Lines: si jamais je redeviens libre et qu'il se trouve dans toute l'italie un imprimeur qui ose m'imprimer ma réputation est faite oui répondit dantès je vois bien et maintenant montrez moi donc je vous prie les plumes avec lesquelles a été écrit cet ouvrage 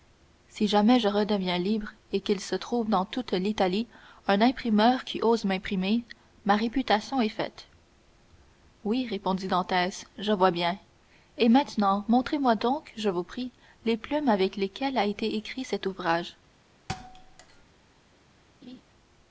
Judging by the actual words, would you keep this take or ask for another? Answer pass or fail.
pass